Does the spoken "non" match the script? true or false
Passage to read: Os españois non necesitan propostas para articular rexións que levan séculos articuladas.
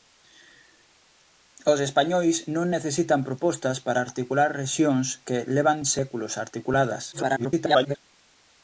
true